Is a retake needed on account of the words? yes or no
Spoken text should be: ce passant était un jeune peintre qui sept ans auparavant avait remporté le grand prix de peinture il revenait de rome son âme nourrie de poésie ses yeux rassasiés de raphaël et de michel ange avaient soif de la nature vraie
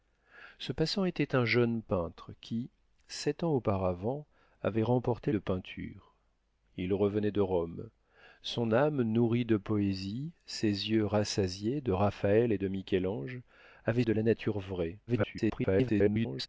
yes